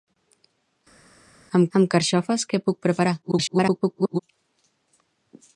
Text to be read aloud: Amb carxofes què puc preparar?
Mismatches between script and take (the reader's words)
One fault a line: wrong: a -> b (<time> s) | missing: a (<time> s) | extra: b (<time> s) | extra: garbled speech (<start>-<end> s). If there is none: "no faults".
extra: amb (1.8 s)
extra: garbled speech (3.2-4.2 s)